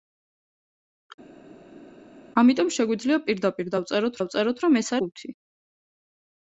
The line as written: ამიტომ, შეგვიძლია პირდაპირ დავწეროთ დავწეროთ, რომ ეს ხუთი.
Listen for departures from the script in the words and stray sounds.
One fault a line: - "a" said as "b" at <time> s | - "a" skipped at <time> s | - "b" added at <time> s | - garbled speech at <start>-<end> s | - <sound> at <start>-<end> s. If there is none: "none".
none